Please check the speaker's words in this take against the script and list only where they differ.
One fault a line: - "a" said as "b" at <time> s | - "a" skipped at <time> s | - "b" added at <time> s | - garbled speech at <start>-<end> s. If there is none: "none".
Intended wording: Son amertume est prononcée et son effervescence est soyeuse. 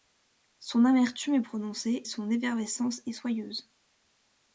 - "et" skipped at 2.0 s